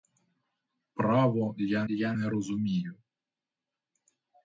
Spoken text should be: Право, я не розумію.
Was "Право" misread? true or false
false